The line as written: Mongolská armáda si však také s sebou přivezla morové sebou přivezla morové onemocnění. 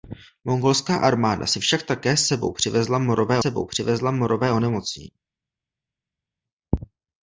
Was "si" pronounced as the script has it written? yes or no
yes